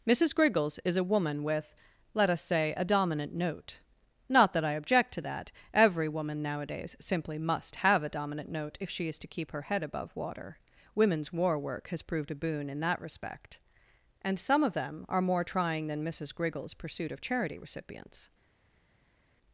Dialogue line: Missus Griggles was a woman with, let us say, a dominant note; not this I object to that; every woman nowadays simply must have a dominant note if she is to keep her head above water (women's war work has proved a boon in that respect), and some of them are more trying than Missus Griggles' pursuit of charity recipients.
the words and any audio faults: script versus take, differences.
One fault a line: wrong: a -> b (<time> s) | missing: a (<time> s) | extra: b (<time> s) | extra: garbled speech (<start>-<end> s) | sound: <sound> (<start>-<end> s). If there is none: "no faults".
wrong: was -> is (0.8 s)
wrong: this -> that (4.5 s)